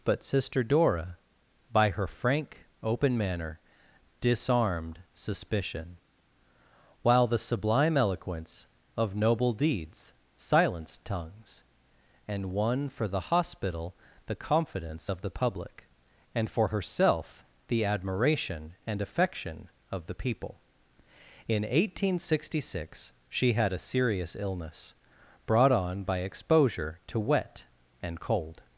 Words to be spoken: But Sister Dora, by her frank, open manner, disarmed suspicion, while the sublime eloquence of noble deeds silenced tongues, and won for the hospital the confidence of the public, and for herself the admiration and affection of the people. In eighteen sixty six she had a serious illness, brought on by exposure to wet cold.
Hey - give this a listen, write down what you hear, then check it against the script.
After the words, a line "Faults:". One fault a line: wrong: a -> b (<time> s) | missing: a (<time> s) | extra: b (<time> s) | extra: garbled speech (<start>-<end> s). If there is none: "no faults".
But Sister Dora, by her frank, open manner, disarmed suspicion, while the sublime eloquence of noble deeds silenced tongues, and won for the hospital the confidence of the public, and for herself the admiration and affection of the people. In eighteen sixty six she had a serious illness, brought on by exposure to wet and cold.
Faults:
extra: and (28.0 s)